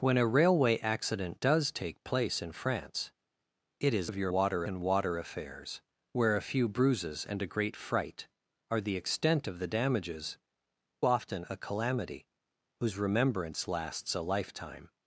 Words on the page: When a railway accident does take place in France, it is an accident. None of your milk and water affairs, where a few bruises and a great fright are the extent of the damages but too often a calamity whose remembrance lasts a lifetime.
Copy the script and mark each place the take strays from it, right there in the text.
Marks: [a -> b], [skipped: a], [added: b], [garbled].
When a railway accident does take place in France, it is [skipped: an accident. None] of your [milk -> water] and water affairs, where a few bruises and a great fright are the extent of the damages [skipped: but too] often a calamity whose remembrance lasts a lifetime.